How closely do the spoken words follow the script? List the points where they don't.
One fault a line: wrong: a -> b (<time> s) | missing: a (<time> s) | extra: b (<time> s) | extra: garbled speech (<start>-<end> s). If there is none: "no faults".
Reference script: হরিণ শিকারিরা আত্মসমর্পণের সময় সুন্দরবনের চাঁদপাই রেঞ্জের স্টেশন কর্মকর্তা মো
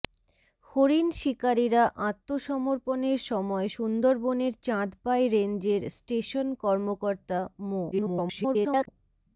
extra: garbled speech (7.9-8.9 s)